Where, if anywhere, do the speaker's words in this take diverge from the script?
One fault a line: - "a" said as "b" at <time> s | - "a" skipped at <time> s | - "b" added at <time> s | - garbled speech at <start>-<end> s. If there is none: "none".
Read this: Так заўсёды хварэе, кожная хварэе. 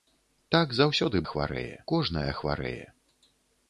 none